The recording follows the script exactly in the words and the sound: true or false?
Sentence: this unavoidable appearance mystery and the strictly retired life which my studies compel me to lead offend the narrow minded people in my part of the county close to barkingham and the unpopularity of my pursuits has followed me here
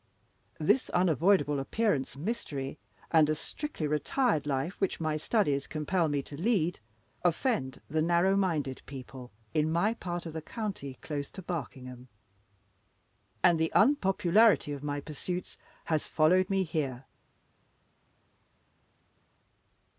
true